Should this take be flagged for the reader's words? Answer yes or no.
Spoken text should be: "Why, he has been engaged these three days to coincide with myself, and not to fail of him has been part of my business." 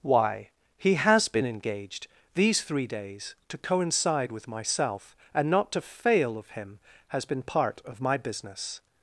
no